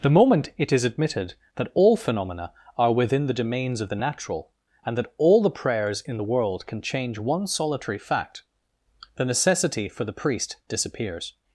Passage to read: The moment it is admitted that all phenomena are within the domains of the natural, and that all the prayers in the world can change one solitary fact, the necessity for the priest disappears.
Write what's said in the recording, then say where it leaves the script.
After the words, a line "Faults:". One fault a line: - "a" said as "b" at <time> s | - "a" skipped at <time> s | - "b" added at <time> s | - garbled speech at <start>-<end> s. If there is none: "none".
The moment it is admitted that all phenomena are within the domains of the natural, and that all the prayers in the world can change one solitary fact, the necessity for the priest disappears.
Faults:
none